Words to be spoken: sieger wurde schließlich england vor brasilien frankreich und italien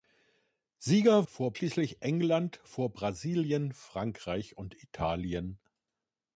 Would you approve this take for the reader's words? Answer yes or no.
no